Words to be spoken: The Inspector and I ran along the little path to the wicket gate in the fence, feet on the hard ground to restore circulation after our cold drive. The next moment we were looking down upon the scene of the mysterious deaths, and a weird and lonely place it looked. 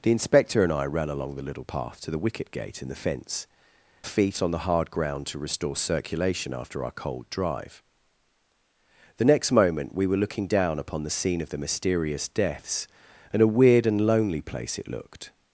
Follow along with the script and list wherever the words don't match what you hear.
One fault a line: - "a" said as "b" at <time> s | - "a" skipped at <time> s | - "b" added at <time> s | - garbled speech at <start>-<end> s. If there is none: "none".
none